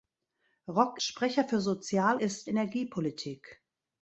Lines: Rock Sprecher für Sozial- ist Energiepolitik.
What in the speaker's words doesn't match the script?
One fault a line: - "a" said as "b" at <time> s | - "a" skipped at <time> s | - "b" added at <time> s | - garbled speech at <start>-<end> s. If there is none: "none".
none